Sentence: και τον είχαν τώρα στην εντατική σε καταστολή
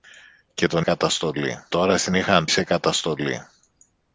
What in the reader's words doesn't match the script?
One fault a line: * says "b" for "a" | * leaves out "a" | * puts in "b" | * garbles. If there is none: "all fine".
* says "καταστολή" for "είχαν"
* says "είχαν" for "εντατική"